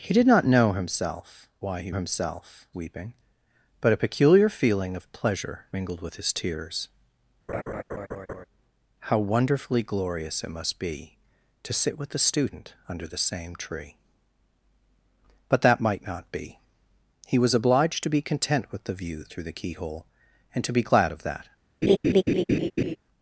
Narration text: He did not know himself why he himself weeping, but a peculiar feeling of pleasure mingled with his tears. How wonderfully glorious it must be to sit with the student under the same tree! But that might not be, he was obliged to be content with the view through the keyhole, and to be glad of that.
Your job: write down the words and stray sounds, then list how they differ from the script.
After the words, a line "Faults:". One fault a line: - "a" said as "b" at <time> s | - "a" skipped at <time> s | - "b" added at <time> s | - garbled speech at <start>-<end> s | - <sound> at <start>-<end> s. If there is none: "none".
He did not know himself why he himself weeping, but a peculiar feeling of pleasure mingled with his tears. How wonderfully glorious it must be to sit with the student under the same tree! But that might not be, he was obliged to be content with the view through the keyhole, and to be glad of that.
Faults:
- laugh at 7.5-8.5 s
- laugh at 21.8-23.0 s